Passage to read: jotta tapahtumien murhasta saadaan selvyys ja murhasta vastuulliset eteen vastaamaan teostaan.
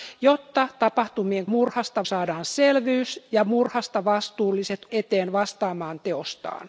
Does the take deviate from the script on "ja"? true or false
false